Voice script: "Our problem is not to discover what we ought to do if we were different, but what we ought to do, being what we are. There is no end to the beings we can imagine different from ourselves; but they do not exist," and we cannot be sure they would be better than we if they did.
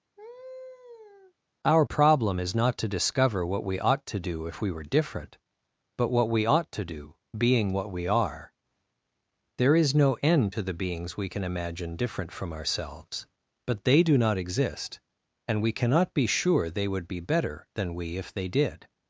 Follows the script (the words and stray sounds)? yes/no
no